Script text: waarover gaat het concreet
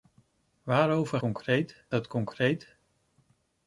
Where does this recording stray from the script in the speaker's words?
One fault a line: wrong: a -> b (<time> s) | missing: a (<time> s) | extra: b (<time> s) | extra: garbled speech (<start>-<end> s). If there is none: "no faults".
wrong: gaat -> concreet (1.1 s)